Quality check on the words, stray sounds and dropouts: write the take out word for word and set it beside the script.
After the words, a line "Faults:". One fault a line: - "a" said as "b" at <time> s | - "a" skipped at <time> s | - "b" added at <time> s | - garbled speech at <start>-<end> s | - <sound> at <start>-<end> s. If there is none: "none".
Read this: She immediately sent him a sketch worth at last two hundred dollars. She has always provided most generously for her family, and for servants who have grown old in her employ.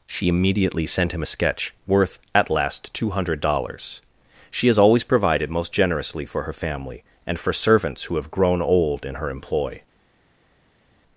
She immediately sent him a sketch worth at last two hundred dollars. She has always provided most generously for her family, and for servants who have grown old in her employ.
Faults:
none